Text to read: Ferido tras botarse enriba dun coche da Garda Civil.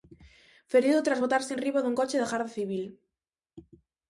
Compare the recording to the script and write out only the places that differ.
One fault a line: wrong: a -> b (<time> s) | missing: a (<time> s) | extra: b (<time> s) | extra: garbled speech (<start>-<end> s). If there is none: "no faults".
no faults